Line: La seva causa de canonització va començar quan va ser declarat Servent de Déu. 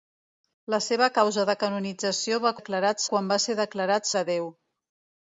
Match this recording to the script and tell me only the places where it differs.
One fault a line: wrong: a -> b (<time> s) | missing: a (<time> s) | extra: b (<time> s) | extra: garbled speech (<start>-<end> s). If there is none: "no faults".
wrong: començar -> declarat (2.6 s)
missing: Servent (4.1 s)